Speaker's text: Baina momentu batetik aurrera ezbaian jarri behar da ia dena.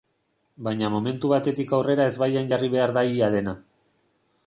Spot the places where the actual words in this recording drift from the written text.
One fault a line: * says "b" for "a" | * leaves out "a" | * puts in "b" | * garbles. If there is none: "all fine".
all fine